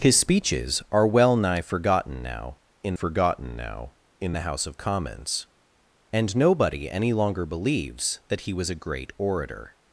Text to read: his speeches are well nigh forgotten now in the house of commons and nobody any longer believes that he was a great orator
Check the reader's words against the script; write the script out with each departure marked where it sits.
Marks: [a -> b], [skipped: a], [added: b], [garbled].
his speeches are well nigh forgotten now in [added: forgotten now in] the house of commons and nobody any longer believes that he was a great orator